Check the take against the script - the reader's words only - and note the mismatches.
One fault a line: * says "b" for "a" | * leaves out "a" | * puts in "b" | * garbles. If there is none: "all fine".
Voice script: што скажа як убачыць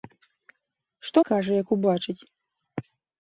all fine